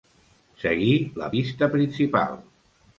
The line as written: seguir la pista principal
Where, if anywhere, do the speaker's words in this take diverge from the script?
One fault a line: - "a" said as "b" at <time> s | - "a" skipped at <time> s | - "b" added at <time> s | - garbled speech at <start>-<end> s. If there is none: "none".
none